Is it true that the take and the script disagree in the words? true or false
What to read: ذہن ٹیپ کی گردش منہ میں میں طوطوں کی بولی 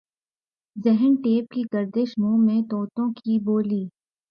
true